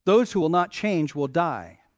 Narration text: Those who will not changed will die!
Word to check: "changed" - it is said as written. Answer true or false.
false